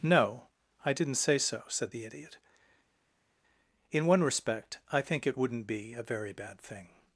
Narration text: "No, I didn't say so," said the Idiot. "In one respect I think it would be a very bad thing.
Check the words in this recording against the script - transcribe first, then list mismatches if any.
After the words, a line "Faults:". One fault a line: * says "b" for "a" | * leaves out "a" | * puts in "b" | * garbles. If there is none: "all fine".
"No, I didn't say so," said the Idiot. "In one respect I think it wouldn't be a very bad thing.
Faults:
* says "wouldn't" for "would"